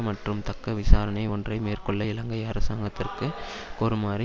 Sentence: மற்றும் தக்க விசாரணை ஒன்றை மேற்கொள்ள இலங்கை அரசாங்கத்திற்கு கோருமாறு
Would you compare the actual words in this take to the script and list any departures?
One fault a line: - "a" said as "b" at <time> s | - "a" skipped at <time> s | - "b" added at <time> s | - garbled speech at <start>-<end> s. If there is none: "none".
none